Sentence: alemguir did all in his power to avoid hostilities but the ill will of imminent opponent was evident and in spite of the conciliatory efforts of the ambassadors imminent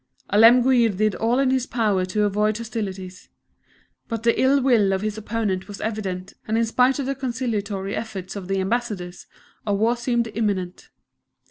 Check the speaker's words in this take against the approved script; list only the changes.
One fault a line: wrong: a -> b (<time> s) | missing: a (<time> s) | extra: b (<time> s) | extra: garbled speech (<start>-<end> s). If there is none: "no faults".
wrong: imminent -> his (5.0 s)
extra: a war seemed (9.6 s)